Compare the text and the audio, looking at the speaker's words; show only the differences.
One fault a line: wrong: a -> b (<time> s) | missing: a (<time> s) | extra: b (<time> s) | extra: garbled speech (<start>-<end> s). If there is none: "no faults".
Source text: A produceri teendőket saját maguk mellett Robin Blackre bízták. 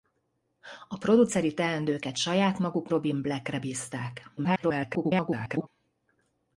missing: mellett (2.9 s)
extra: garbled speech (4.4-5.7 s)